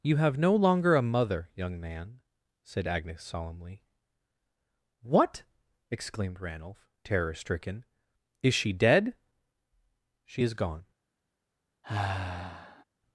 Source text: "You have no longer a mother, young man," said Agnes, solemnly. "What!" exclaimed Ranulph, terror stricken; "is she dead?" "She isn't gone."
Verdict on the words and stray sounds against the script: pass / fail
fail